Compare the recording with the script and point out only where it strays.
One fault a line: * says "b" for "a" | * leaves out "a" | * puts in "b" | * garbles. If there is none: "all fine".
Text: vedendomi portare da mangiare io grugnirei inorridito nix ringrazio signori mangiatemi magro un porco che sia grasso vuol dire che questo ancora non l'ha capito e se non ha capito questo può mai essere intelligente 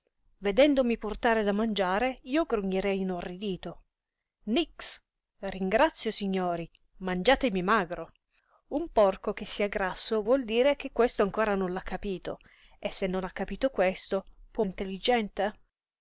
* leaves out "mai essere"